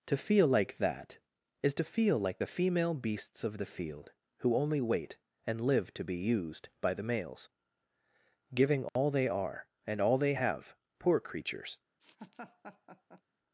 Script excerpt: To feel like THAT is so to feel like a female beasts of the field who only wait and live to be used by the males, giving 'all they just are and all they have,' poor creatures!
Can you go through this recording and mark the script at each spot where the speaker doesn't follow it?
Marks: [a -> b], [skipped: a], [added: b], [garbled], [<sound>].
To feel like THAT is [skipped: so] to feel like [a -> the] female beasts of the field who only wait and live to be used by the males, giving 'all [dropout] they [skipped: just] are and all they have,' poor creatures! [laugh]